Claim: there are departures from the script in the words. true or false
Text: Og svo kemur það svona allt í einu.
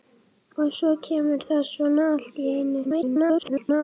true